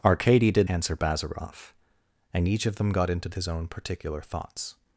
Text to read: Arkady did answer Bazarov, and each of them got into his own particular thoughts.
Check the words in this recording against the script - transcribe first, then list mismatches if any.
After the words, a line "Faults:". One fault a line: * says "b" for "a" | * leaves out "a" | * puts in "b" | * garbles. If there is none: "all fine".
Arkady did answer Bazarov, and each of them got into his own particular thoughts.
Faults:
all fine